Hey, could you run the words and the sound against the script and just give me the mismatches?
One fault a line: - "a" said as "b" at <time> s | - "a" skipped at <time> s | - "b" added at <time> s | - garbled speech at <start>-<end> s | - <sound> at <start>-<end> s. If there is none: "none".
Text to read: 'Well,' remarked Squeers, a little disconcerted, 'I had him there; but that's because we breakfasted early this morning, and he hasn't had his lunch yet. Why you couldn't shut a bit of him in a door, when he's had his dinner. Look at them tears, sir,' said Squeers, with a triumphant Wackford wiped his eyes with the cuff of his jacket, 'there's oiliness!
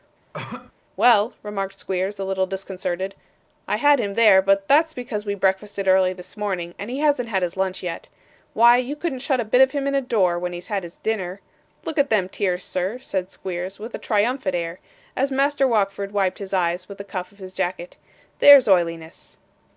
- cough at 0.3-0.7 s
- "air as Master" added at 14.6 s